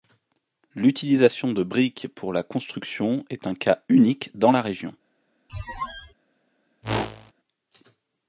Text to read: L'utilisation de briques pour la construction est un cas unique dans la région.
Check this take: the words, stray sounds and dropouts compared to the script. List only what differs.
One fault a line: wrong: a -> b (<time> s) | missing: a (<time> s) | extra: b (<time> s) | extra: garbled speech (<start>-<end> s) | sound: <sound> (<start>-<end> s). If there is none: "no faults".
sound: squeak (5.5-6.1 s)
sound: whoosh (6.8-7.3 s)